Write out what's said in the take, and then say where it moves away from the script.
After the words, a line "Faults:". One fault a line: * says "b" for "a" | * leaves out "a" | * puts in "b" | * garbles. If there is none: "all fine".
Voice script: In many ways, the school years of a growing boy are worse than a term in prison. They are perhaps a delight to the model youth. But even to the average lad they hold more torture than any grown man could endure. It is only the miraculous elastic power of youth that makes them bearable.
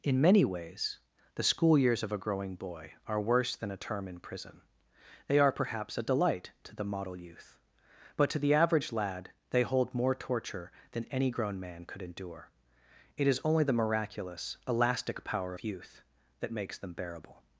In many ways, the school years of a growing boy are worse than a term in prison. They are perhaps a delight to the model youth. But to the average lad they hold more torture than any grown man could endure. It is only the miraculous elastic power of youth that makes them bearable.
Faults:
* leaves out "even"